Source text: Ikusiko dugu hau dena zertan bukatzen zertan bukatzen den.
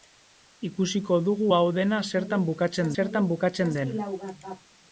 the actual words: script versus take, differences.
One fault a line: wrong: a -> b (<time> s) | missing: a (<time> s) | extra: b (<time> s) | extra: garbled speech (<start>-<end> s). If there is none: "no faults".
no faults